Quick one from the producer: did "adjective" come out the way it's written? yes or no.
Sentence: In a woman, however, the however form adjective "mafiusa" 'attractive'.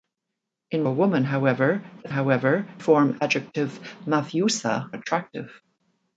yes